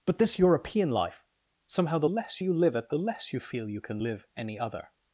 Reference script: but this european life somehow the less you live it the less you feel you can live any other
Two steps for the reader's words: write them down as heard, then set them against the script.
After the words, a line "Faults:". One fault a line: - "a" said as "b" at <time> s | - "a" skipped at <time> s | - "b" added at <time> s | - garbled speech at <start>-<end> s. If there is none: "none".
but this european life somehow the less you live it the less you feel you can live any other
Faults:
none